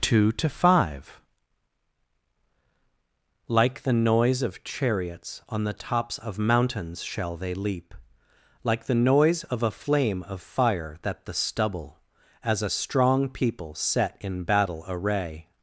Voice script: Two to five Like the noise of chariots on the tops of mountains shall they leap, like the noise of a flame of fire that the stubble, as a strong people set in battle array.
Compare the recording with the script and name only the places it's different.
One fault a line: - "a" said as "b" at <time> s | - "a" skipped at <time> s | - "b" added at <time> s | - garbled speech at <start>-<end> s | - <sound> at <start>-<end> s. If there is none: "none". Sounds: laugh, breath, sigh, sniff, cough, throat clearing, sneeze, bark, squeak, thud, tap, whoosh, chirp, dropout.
none